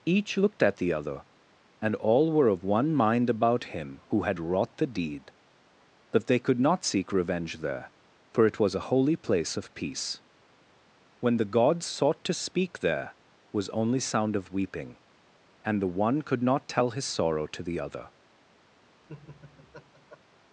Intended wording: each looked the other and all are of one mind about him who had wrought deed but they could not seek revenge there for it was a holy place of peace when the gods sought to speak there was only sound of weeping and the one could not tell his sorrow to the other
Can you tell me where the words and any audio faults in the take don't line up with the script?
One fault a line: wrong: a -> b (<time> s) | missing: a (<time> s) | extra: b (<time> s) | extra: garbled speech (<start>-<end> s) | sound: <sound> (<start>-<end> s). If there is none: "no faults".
extra: at (0.6 s)
wrong: are -> were (2.3 s)
extra: the (4.8 s)
sound: laugh (19.0-20.2 s)